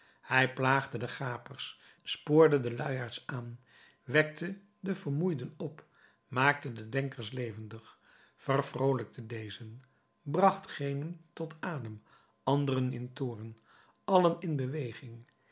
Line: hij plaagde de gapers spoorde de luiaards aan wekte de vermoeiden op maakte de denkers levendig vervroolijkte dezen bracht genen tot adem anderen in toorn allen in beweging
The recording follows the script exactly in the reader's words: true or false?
true